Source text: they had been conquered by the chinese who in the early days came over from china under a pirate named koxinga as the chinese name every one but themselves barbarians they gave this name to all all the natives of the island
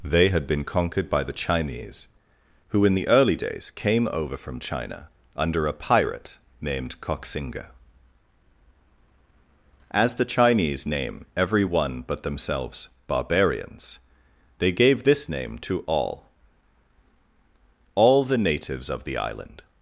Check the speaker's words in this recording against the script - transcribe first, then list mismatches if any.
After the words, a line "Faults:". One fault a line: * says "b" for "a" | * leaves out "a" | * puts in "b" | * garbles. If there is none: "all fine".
they had been conquered by the chinese who in the early days came over from china under a pirate named koxinga as the chinese name every one but themselves barbarians they gave this name to all all the natives of the island
Faults:
all fine